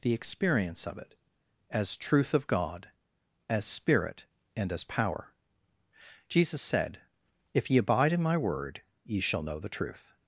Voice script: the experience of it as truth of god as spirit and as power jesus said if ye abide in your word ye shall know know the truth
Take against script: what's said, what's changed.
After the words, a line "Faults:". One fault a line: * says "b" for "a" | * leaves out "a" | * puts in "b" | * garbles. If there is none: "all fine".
the experience of it as truth of god as spirit and as power jesus said if ye abide in my word ye shall know the truth
Faults:
* says "my" for "your"
* leaves out "know"